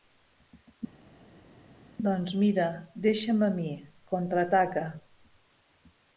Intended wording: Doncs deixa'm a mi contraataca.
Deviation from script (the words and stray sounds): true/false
true